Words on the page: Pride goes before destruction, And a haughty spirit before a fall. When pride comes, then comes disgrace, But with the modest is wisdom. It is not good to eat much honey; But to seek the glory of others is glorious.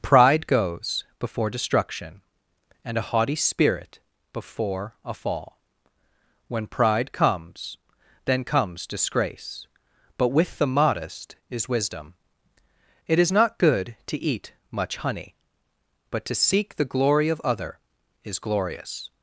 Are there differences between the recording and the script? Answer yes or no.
yes